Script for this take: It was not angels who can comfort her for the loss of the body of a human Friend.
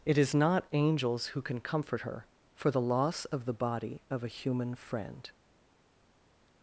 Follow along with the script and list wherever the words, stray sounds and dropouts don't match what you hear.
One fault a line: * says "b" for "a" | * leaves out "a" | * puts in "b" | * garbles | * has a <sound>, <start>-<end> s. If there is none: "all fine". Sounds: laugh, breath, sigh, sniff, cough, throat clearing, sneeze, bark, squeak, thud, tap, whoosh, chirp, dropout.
* says "is" for "was"